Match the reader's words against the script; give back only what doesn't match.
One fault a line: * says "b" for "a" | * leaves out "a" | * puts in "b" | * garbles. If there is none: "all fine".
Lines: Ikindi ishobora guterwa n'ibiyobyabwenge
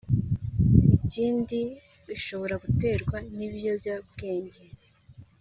all fine